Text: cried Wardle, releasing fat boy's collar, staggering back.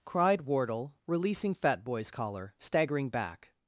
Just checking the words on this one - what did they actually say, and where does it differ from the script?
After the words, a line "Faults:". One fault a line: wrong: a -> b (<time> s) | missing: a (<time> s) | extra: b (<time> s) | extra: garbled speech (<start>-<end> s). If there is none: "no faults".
cried Wardle, releasing fat boy's collar, staggering back.
Faults:
no faults